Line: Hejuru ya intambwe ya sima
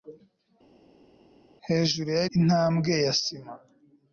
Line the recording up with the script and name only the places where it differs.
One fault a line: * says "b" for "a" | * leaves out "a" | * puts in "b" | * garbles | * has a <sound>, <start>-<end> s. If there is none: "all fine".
all fine